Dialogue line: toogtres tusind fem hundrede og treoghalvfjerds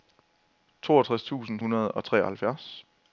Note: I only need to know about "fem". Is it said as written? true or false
false